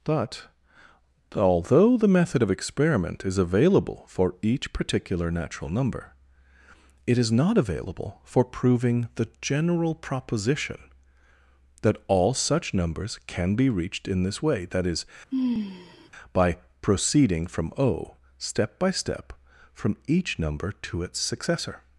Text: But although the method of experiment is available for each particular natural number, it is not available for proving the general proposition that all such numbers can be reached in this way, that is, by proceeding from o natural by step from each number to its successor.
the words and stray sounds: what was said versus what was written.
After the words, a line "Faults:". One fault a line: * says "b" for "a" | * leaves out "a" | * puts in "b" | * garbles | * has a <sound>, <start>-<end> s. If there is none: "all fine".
But although the method of experiment is available for each particular natural number, it is not available for proving the general proposition that all such numbers can be reached in this way, that is, by proceeding from o step by step from each number to its successor.
Faults:
* has a sigh, 15.3-16.1 s
* says "step" for "natural"